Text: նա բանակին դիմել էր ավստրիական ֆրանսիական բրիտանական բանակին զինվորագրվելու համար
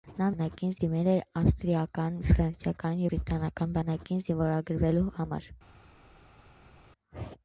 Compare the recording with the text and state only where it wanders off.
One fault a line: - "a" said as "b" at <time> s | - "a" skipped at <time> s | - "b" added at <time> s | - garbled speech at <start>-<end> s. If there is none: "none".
none